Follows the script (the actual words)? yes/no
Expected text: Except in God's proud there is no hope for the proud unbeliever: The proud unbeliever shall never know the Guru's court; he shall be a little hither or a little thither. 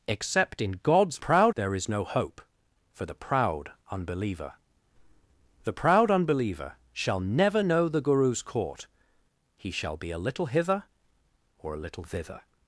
yes